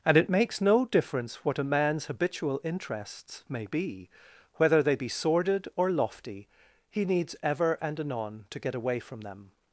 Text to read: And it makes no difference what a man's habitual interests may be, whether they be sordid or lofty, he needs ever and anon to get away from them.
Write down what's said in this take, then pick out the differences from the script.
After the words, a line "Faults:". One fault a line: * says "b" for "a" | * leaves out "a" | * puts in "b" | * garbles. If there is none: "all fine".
And it makes no difference what a man's habitual interests may be, whether they be sordid or lofty, he needs ever and anon to get away from them.
Faults:
all fine